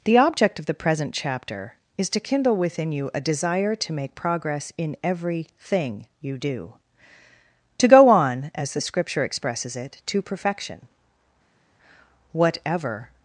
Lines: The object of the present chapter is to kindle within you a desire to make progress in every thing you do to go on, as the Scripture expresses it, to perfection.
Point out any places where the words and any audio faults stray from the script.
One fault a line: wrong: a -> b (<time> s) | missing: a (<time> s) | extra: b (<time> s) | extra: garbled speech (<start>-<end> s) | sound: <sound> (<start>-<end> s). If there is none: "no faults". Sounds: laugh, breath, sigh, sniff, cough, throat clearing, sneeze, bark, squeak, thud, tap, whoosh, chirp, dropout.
extra: Whatever (12.3 s)